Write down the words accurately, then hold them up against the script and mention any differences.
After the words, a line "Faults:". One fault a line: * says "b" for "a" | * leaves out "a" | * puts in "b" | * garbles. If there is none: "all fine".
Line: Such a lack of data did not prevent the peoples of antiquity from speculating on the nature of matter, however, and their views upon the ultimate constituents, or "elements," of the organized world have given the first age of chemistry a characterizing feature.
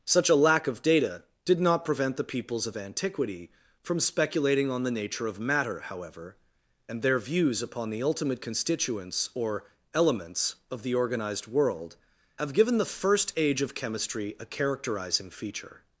Such a lack of data did not prevent the peoples of antiquity from speculating on the nature of matter, however, and their views upon the ultimate constituents, or "elements," of the organized world have given the first age of chemistry a characterizing feature.
Faults:
all fine